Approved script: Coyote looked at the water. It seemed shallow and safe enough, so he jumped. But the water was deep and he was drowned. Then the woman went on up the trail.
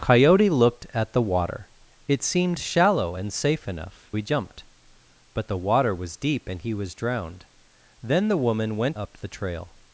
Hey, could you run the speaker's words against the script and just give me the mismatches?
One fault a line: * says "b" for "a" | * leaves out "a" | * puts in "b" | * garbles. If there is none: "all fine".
* leaves out "so"
* leaves out "on"